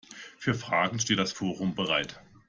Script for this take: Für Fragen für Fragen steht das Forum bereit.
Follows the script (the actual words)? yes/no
no